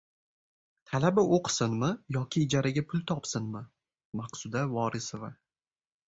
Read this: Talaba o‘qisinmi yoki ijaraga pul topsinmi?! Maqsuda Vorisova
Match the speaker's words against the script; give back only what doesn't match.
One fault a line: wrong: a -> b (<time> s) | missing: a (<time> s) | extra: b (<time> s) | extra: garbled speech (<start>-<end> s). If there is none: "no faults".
no faults